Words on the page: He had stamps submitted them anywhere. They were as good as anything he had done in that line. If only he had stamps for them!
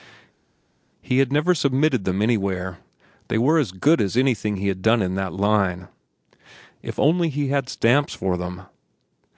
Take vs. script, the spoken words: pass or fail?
fail